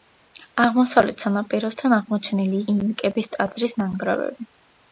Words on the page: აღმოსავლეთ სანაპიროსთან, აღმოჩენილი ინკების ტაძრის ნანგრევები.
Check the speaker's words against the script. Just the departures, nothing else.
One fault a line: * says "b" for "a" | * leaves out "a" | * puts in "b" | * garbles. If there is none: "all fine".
all fine